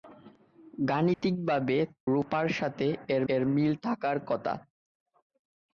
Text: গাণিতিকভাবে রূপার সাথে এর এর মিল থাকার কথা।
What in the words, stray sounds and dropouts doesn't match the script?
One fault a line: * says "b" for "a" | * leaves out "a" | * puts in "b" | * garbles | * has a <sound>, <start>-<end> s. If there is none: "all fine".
* has a dropout, 1.1-1.2 s